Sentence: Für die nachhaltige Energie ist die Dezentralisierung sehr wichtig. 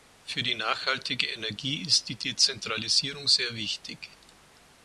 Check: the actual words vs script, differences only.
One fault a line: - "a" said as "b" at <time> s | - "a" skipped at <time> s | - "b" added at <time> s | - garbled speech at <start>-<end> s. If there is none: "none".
none